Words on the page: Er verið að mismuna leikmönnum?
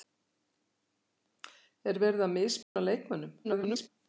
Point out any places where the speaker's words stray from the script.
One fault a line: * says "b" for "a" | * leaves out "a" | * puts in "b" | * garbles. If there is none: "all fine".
* garbles